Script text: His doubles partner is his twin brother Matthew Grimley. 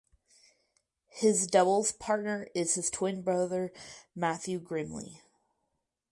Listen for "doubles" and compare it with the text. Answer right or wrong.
right